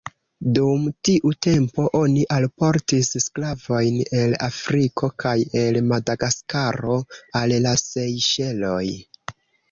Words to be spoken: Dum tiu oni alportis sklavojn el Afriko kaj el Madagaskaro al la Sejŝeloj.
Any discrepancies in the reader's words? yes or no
yes